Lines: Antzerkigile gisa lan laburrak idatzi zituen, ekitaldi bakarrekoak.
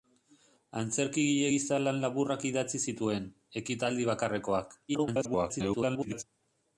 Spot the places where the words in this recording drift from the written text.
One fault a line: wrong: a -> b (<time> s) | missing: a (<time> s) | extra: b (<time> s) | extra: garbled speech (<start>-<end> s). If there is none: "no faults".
extra: garbled speech (4.9-6.2 s)